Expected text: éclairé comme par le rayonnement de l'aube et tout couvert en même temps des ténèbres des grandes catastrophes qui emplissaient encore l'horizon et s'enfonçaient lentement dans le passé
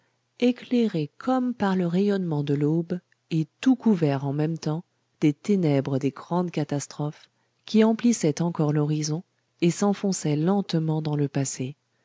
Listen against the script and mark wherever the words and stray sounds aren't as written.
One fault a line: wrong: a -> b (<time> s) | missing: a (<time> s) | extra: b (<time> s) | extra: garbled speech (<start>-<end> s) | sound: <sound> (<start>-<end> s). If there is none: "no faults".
no faults